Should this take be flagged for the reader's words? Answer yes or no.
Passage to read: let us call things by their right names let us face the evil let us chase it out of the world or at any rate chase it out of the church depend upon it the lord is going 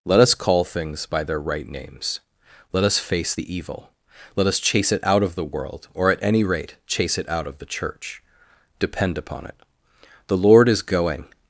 no